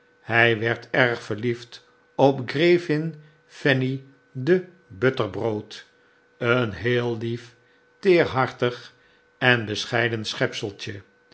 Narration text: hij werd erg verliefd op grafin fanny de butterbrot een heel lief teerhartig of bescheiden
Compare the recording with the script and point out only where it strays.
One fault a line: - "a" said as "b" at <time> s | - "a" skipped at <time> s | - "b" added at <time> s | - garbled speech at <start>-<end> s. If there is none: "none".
- "of" said as "en" at 9.4 s